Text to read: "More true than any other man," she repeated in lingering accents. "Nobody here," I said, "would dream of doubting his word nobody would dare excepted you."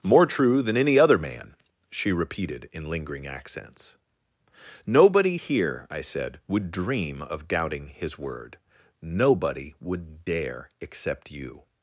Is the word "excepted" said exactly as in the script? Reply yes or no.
no